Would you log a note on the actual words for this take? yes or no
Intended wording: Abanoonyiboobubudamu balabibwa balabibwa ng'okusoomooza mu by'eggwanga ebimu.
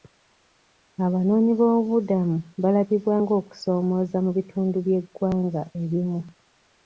yes